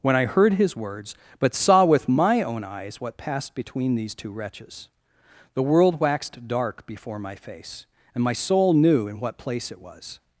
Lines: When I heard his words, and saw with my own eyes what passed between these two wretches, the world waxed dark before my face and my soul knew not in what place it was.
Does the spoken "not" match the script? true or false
false